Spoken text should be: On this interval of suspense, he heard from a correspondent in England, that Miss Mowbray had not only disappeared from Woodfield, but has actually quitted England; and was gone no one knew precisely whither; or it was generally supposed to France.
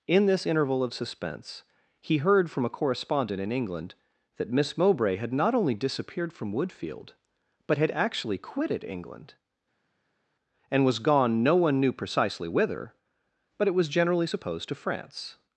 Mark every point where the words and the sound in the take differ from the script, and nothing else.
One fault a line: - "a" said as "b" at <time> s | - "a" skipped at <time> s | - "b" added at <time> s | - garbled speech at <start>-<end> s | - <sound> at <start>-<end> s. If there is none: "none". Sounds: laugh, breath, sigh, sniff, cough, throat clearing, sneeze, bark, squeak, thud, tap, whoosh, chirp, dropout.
- "On" said as "In" at 0.1 s
- "has" said as "had" at 7.8 s
- "or" said as "but" at 13.6 s